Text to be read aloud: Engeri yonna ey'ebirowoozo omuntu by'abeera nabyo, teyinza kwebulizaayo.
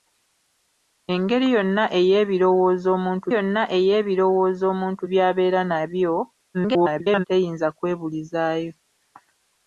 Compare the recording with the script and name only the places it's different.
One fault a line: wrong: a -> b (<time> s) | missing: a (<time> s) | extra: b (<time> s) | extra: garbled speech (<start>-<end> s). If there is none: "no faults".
extra: yonna ey'ebirowoozo omuntu (3.3 s)
extra: garbled speech (6.5-7.3 s)